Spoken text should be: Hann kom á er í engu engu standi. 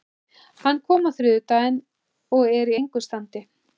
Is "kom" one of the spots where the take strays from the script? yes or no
no